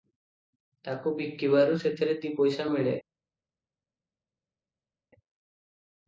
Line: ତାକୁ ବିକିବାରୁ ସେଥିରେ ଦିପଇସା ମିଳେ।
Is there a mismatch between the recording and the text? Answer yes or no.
no